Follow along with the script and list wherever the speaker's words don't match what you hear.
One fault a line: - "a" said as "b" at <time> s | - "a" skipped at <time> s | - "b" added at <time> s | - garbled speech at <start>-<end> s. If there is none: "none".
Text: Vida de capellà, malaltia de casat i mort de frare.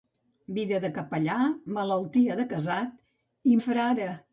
- "mort" skipped at 3.6 s